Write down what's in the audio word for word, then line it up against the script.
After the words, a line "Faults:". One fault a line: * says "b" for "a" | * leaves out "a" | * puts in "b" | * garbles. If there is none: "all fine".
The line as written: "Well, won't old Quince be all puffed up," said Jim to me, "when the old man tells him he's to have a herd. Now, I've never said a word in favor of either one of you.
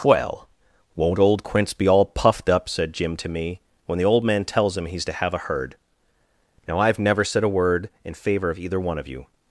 "Well, won't old Quince be all puffed up," said Jim to me, "when the old man tells him he's to have a herd. Now, I've never said a word in favor of either one of you.
Faults:
all fine